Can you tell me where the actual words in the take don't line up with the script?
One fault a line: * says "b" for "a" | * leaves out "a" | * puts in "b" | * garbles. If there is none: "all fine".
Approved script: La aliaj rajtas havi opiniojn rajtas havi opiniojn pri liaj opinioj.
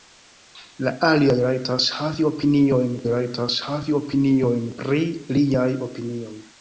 all fine